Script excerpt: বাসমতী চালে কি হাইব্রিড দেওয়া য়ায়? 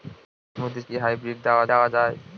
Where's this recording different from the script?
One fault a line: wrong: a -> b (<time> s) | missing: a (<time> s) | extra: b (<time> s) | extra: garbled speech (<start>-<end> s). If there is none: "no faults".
missing: চালে (0.8 s)
extra: দেওয়া (1.7 s)